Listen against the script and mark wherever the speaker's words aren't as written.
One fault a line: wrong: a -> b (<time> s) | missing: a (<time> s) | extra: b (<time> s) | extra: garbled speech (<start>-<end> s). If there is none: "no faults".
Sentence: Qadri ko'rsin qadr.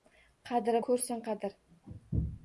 no faults